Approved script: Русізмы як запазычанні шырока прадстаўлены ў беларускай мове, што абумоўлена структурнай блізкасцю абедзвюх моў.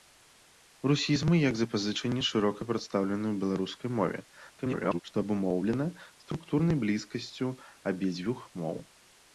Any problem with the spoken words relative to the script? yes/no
yes